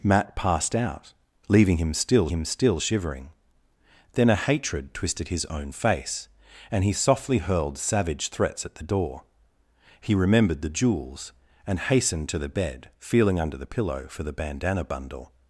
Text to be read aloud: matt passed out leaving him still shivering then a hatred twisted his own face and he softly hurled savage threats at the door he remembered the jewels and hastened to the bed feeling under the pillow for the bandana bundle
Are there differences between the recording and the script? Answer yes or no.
yes